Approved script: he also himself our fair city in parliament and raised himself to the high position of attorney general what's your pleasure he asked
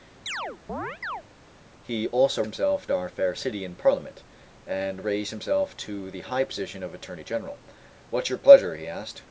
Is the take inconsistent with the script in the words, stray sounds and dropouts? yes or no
yes